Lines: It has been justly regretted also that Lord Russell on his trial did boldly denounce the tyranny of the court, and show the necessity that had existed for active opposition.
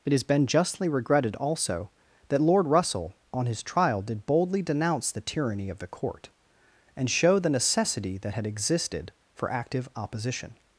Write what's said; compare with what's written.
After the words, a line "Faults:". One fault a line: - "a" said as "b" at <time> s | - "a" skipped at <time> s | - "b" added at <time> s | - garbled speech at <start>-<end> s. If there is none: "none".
It has been justly regretted also that Lord Russell on his trial did boldly denounce the tyranny of the court, and show the necessity that had existed for active opposition.
Faults:
none